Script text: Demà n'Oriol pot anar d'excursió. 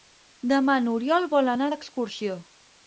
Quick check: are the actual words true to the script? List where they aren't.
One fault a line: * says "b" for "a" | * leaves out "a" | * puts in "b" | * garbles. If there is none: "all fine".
* says "vol" for "pot"